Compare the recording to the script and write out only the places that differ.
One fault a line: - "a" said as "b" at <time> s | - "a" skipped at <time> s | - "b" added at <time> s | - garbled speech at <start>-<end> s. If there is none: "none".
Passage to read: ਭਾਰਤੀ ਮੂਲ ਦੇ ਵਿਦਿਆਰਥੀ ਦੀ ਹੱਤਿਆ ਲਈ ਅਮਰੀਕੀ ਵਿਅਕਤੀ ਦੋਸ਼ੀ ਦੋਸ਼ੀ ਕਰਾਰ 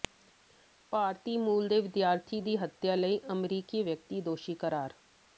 - "ਦੋਸ਼ੀ" skipped at 4.5 s